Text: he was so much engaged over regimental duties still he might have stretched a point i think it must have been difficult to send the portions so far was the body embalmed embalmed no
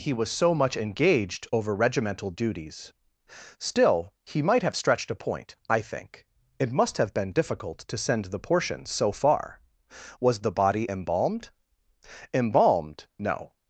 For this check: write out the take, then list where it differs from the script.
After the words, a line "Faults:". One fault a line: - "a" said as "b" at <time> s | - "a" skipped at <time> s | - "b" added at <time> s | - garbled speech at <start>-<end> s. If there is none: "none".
he was so much engaged over regimental duties still he might have stretched a point i think it must have been difficult to send the portions so far was the body embalmed embalmed no
Faults:
none